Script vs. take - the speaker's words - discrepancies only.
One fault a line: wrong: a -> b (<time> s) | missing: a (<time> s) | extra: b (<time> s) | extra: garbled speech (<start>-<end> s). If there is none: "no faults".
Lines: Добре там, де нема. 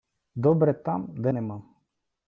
no faults